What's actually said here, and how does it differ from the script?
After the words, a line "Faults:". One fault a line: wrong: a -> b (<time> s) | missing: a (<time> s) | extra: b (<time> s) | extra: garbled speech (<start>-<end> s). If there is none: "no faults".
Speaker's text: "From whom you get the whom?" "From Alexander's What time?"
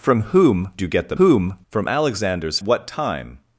"From whom you get the whom?" "From Alexander's What time?"
Faults:
no faults